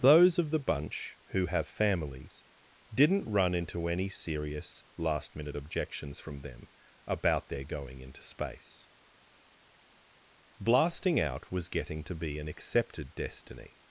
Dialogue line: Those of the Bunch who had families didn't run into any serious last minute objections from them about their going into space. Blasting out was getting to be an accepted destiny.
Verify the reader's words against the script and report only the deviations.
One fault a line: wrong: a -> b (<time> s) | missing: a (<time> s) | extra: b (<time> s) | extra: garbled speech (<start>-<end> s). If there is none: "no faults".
wrong: had -> have (1.4 s)